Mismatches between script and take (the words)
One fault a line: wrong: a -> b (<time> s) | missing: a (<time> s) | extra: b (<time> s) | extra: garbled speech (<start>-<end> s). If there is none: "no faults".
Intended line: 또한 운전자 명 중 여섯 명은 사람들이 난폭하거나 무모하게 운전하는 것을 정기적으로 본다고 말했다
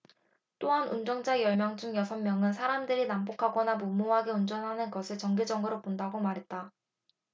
extra: 열 (1.4 s)